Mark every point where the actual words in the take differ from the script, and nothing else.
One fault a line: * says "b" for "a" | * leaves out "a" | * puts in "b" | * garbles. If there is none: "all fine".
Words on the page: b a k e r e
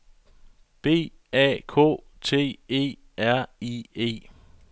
* puts in "t"
* puts in "i"